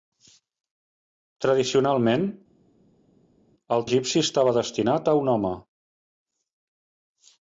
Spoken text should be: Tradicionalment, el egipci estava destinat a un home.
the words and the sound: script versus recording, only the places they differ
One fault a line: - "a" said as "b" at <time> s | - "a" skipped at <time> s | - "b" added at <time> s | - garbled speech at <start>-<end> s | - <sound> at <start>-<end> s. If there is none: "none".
none